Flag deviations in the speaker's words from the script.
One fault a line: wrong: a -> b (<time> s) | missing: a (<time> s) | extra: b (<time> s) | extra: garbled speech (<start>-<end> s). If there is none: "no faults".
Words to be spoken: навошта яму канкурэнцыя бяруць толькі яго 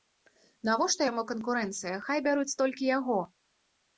extra: хай (2.1 s)